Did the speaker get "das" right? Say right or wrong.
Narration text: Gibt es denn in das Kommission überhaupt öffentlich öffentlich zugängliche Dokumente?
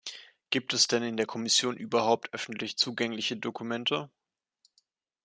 wrong